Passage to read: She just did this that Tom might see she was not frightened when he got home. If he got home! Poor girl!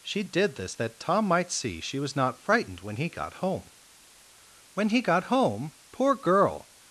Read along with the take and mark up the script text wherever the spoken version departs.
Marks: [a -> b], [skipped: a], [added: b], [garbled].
She [skipped: just] did this that Tom might see she was not frightened when he got home. [If -> When] he got home! Poor girl!